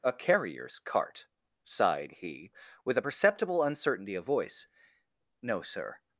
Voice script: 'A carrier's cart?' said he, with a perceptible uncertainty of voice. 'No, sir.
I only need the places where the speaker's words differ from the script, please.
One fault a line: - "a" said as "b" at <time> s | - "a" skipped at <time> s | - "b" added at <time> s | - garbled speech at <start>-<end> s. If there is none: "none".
- "said" said as "sighed" at 1.7 s